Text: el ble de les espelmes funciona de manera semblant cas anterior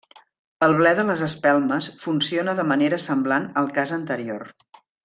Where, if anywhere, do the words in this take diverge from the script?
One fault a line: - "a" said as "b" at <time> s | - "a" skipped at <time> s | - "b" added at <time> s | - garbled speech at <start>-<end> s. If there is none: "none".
- "al" added at 3.6 s